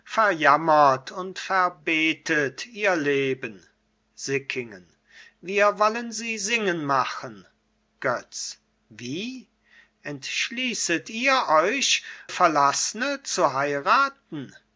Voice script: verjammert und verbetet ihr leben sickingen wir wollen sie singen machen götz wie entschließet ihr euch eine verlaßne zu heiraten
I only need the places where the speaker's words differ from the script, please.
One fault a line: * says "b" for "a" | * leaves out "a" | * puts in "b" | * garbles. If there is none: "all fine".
* leaves out "eine"